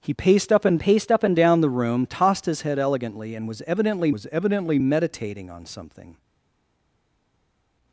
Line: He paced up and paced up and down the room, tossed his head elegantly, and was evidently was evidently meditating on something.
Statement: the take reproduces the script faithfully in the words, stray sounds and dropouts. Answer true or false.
true